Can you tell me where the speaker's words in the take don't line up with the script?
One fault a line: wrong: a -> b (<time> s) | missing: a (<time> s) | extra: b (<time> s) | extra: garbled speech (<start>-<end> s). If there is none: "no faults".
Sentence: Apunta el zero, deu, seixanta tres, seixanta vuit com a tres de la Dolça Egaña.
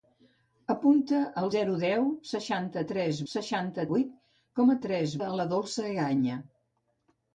no faults